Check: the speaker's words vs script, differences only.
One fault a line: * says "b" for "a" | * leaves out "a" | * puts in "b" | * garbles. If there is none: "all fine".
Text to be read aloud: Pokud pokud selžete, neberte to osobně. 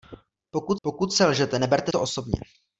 all fine